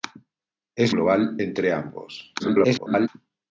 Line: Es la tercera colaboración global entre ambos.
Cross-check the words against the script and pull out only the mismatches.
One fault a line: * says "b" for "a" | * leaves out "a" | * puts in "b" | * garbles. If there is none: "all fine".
* leaves out "la tercera colaboración"
* garbles